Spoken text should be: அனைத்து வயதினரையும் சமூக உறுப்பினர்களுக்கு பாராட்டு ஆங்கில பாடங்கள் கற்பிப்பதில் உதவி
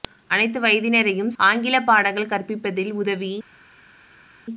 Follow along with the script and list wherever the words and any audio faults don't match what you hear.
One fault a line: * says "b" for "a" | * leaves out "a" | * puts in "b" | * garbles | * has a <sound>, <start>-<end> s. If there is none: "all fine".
* leaves out "சமூக உறுப்பினர்களுக்கு பாராட்டு"